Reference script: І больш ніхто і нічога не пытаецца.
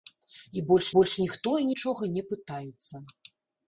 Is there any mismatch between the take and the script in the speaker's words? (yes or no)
yes